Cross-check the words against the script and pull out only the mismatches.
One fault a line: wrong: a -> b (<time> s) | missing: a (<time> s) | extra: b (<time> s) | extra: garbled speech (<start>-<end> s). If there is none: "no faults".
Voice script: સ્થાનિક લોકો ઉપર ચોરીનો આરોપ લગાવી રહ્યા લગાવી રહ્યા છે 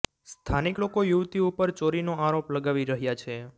extra: યુવતી (1.0 s)
missing: લગાવી રહ્યા (3.2 s)